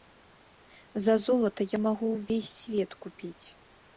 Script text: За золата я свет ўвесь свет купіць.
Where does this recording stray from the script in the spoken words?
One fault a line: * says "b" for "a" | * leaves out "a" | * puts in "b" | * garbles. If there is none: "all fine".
* says "магу" for "свет"